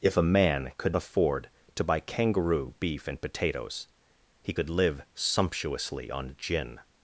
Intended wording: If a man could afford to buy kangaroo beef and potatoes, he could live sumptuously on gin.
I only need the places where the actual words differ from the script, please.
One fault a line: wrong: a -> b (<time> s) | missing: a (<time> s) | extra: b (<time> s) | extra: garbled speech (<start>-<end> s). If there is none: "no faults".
no faults